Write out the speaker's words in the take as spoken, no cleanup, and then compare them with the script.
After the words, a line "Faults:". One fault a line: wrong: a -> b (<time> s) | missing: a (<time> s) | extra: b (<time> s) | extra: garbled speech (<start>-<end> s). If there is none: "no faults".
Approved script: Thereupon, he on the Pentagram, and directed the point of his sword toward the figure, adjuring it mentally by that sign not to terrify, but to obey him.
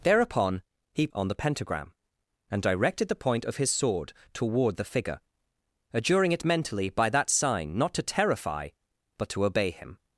Thereupon, he on the Pentagram, and directed the point of his sword toward the figure, adjuring it mentally by that sign not to terrify, but to obey him.
Faults:
no faults